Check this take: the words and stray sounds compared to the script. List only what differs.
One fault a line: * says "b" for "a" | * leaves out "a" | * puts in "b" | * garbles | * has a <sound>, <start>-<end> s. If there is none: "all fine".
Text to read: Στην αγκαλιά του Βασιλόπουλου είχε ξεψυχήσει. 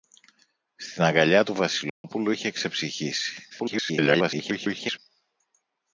* has a dropout, 1.9-2.0 s
* garbles